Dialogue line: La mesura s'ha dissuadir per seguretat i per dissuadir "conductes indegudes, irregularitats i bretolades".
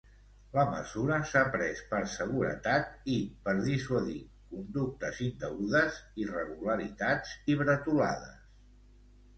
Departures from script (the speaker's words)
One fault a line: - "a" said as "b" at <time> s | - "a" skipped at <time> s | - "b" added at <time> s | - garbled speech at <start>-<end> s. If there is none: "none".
- "dissuadir" said as "pres" at 1.6 s